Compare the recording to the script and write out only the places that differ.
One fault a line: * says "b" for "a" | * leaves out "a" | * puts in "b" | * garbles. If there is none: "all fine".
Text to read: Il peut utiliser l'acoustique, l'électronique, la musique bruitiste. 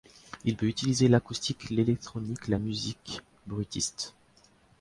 all fine